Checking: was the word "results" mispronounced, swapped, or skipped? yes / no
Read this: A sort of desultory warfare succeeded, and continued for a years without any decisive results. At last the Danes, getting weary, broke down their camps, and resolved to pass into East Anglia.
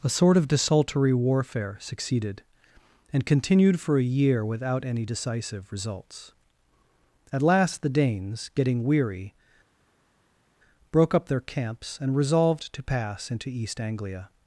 no